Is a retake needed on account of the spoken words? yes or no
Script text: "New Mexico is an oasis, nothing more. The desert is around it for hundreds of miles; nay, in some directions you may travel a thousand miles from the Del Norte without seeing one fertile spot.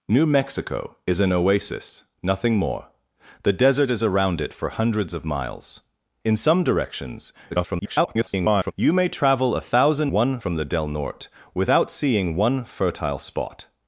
yes